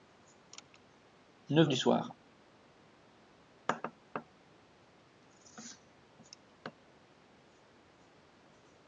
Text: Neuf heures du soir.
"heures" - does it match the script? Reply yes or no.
no